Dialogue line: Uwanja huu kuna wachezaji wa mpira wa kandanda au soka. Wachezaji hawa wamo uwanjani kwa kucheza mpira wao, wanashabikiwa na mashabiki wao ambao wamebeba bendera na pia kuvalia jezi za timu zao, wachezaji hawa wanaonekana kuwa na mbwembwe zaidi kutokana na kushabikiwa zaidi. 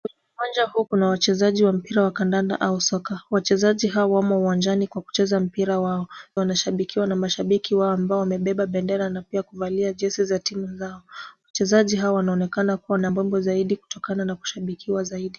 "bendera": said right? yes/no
yes